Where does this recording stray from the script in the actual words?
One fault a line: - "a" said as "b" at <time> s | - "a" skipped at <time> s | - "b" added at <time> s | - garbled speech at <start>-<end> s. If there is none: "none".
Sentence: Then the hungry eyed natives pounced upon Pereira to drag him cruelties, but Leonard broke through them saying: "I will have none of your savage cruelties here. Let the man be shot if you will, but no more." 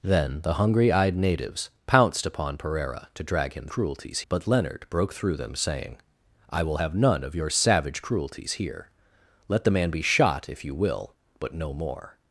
none